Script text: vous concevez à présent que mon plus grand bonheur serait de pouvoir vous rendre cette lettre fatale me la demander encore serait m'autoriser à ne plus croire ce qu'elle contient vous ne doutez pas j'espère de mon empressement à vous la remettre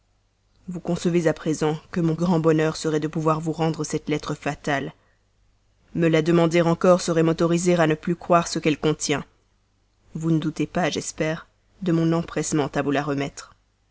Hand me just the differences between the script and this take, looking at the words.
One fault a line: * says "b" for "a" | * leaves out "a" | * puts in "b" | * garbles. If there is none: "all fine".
* leaves out "plus"